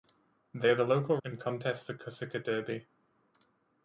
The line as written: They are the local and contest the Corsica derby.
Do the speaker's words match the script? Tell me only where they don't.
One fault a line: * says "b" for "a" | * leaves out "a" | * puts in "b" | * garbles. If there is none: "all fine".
all fine